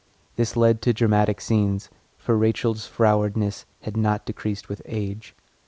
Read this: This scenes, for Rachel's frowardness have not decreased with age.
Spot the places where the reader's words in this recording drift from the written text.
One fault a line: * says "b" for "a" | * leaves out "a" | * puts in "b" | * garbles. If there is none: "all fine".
* puts in "led to dramatic"
* says "had" for "have"